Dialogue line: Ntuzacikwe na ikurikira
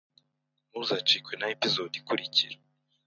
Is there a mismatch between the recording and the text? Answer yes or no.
yes